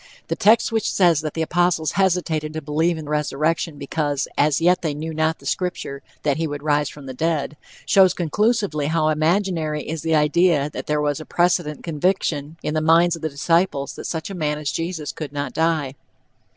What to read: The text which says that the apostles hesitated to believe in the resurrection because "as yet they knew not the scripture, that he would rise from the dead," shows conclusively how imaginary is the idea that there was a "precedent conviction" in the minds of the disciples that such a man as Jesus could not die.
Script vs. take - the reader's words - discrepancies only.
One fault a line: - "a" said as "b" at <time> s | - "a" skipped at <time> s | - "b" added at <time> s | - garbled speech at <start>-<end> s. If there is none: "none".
- "the" skipped at 3.1 s